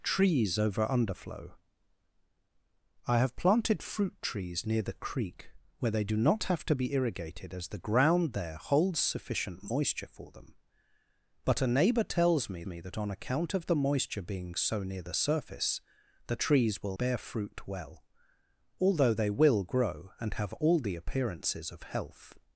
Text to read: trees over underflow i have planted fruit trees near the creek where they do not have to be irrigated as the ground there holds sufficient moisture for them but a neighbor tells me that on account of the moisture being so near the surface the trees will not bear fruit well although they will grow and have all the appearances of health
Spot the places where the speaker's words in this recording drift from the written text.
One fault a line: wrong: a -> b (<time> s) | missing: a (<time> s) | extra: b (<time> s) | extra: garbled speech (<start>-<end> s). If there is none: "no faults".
extra: me (12.7 s)
missing: not (17.0 s)